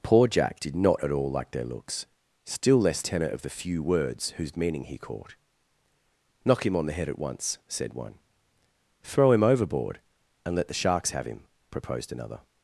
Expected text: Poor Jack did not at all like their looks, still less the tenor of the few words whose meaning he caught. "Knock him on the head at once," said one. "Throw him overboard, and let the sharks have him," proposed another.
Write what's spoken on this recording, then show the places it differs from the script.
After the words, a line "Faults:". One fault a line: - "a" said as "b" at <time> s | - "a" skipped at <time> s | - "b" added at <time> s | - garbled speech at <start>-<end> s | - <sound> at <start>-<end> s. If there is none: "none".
Poor Jack did not at all like their looks, still less tenor of the few words whose meaning he caught. "Knock him on the head at once," said one. "Throw him overboard, and let the sharks have him," proposed another.
Faults:
- "the" skipped at 3.0 s